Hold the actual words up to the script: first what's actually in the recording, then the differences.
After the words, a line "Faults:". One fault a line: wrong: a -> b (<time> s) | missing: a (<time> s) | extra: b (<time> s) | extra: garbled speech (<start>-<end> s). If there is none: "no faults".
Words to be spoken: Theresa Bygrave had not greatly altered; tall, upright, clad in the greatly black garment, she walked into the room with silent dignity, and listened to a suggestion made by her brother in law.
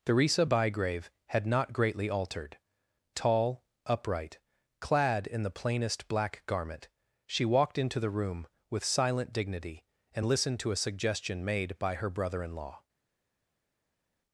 Theresa Bygrave had not greatly altered; tall, upright, clad in the plainest black garment, she walked into the room with silent dignity, and listened to a suggestion made by her brother in law.
Faults:
wrong: greatly -> plainest (5.5 s)